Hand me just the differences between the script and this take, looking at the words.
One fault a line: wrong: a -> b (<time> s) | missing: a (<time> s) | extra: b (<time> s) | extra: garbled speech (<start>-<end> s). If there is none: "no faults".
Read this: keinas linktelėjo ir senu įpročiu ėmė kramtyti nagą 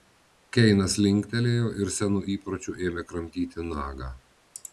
no faults